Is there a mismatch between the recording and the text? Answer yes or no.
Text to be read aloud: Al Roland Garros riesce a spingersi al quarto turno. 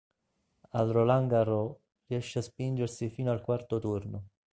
yes